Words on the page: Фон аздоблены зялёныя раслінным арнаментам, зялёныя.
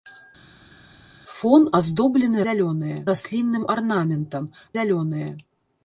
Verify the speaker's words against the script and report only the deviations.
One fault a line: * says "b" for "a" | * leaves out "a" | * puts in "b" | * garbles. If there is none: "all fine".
all fine